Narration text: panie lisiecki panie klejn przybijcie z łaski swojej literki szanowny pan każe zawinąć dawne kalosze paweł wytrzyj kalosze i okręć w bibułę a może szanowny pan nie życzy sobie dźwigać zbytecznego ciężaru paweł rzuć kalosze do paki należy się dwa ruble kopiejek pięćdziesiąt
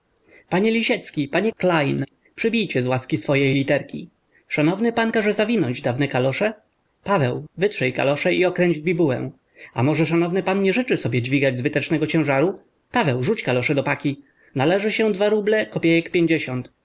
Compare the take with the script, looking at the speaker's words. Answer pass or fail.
pass